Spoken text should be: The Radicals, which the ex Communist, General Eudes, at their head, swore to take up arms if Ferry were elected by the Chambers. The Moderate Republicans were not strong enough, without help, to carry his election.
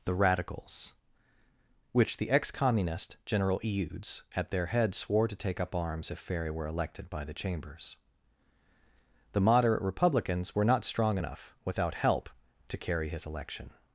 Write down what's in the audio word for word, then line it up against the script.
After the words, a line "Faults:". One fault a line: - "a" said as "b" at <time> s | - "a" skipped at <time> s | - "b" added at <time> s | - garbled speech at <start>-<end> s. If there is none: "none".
The Radicals, which the ex Communist, General Eudes, at their head, swore to take up arms if Ferry were elected by the Chambers. The Moderate Republicans were not strong enough, without help, to carry his election.
Faults:
none